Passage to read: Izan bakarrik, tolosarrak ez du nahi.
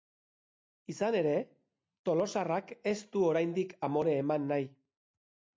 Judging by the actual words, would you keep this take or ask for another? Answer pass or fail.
fail